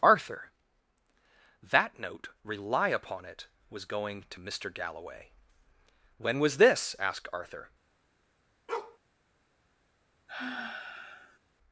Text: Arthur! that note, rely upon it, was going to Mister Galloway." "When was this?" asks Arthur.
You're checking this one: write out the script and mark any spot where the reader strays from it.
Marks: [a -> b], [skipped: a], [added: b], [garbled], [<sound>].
Arthur! that note, rely upon it, was going to Mister Galloway." "When was this?" [asks -> asked] Arthur. [bark] [sigh]